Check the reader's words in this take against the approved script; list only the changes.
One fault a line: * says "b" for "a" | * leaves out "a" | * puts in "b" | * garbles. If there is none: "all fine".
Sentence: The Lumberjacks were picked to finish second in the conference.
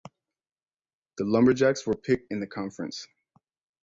* leaves out "to finish second"